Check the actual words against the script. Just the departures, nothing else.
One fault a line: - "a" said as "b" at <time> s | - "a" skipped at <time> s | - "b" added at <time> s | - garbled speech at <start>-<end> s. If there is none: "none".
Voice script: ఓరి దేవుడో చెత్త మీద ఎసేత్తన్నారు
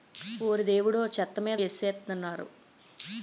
none